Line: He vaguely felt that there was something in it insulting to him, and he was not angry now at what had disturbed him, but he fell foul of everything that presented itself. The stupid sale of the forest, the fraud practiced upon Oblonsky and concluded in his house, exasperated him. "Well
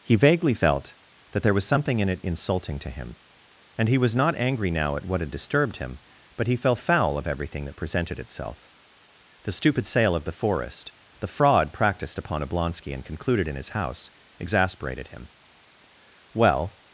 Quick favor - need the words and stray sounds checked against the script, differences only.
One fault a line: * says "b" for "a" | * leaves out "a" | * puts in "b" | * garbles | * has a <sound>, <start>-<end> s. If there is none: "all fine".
all fine